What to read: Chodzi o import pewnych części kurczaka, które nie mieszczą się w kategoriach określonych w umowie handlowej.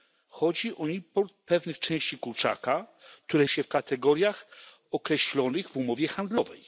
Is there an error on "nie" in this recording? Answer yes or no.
yes